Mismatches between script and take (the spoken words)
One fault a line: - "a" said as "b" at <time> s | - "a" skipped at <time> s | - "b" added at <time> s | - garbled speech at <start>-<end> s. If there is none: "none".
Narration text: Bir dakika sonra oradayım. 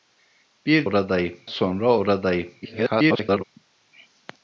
- "dakika" said as "oradayım" at 0.8 s
- garbled speech at 2.6-3.4 s